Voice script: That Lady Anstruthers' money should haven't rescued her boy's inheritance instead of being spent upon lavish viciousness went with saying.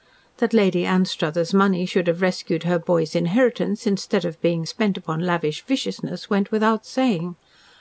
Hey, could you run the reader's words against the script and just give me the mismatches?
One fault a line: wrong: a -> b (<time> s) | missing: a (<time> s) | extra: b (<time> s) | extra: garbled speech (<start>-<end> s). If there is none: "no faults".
wrong: haven't -> have (2.1 s)
wrong: with -> without (6.5 s)